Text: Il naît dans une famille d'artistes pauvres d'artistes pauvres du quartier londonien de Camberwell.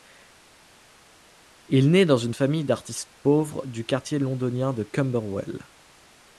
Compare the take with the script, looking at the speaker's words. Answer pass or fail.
fail